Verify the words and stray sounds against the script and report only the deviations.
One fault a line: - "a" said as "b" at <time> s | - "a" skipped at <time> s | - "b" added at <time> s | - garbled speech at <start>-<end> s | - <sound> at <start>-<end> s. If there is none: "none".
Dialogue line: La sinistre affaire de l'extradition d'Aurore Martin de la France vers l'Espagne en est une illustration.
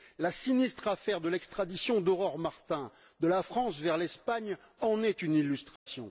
- dropout at 5.8-5.9 s